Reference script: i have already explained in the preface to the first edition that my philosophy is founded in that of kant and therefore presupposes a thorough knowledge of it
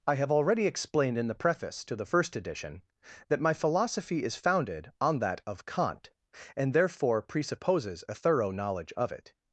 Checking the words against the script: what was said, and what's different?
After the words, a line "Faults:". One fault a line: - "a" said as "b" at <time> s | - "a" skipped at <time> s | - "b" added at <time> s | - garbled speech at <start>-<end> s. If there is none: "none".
i have already explained in the preface to the first edition that my philosophy is founded on that of kant and therefore presupposes a thorough knowledge of it
Faults:
- "in" said as "on" at 5.0 s